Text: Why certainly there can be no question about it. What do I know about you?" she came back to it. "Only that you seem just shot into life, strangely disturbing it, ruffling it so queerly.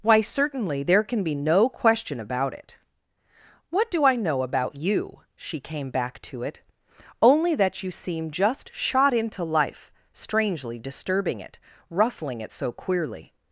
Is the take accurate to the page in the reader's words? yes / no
yes